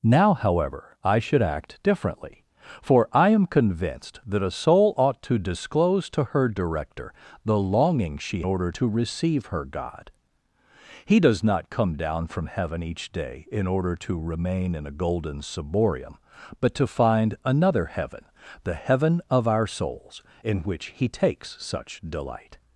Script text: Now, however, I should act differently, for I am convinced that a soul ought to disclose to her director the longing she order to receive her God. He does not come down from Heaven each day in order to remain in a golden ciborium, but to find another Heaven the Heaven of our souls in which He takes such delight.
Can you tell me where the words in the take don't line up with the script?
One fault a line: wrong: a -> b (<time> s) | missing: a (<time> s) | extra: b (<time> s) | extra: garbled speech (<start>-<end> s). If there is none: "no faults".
no faults